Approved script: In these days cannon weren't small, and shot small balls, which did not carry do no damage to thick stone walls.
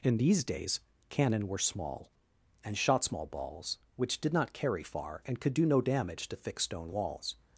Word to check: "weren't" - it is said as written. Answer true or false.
false